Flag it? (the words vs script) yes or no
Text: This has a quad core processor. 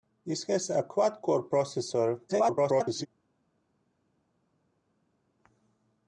yes